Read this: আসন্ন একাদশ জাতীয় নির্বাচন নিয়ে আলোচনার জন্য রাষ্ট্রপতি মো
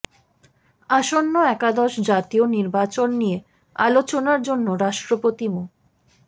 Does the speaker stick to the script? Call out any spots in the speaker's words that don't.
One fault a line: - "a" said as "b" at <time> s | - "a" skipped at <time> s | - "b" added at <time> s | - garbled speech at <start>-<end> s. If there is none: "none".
none